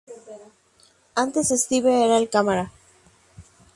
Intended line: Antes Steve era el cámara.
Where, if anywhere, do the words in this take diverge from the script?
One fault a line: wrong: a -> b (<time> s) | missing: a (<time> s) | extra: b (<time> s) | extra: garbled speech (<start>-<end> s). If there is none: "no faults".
no faults